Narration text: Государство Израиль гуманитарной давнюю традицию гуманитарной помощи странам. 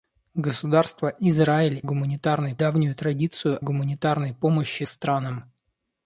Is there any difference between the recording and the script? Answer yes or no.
no